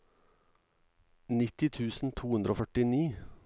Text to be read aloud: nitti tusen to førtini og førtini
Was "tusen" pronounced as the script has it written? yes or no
yes